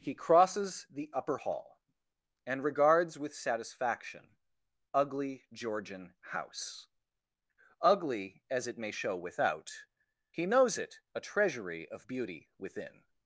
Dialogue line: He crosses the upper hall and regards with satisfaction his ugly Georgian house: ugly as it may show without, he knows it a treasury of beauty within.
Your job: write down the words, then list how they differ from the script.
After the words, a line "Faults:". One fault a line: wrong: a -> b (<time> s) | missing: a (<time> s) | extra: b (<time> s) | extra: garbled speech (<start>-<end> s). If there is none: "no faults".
He crosses the upper hall and regards with satisfaction ugly Georgian house: ugly as it may show without, he knows it a treasury of beauty within.
Faults:
missing: his (4.4 s)